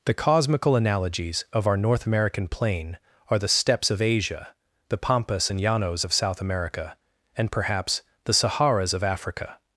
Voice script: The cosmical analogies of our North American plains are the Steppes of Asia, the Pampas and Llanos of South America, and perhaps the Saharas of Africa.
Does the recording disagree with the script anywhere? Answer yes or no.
yes